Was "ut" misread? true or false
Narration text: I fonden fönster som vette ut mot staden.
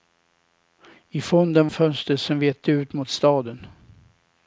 false